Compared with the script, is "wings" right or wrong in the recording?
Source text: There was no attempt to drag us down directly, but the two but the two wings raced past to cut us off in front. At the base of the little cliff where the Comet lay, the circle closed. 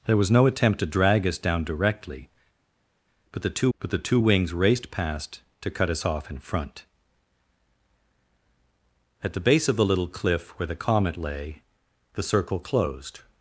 right